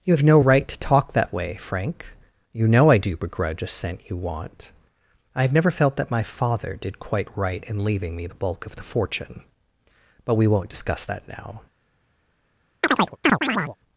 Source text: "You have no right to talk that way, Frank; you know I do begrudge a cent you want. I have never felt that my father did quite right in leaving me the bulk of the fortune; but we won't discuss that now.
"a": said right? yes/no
yes